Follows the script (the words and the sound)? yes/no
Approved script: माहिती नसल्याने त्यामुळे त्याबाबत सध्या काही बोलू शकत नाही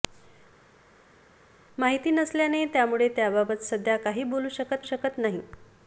no